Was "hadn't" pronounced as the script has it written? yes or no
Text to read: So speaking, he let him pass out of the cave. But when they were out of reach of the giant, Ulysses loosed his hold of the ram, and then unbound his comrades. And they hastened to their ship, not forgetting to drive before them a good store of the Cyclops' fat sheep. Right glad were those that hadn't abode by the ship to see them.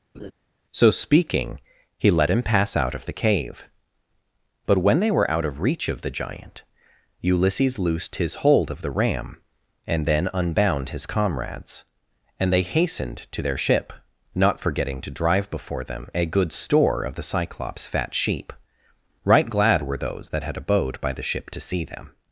no